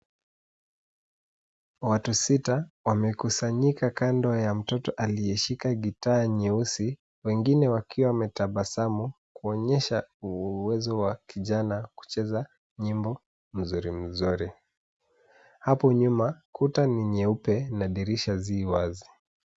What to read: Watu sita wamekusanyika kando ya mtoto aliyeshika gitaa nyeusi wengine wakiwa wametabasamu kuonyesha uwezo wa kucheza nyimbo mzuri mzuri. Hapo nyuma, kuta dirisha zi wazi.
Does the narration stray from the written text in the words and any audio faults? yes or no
yes